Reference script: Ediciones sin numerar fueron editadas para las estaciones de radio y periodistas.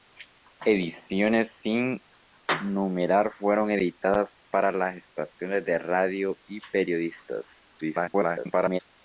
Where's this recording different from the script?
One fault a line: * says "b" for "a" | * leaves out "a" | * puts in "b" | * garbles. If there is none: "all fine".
* garbles